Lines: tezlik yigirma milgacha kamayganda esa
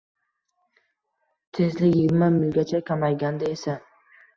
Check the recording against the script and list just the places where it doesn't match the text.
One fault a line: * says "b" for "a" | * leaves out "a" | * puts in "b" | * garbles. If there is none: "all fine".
all fine